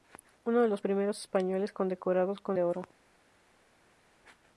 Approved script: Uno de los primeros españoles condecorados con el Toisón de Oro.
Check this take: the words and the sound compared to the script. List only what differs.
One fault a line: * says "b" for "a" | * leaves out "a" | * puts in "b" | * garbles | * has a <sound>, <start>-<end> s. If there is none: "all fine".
* leaves out "el Toisón"